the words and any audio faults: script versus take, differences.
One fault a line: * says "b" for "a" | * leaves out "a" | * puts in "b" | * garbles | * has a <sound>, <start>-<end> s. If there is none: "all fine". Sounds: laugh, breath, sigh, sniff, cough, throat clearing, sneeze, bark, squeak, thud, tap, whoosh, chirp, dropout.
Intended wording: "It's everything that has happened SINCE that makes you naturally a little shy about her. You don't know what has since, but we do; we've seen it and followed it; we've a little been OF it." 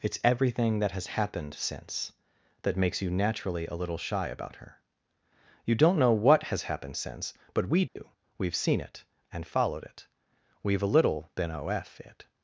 * puts in "happened"
* has a dropout, 7.9-8.0 s